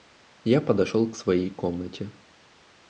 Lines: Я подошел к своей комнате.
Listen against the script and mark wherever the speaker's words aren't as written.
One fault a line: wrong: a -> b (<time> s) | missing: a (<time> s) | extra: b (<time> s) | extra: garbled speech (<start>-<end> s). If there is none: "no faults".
no faults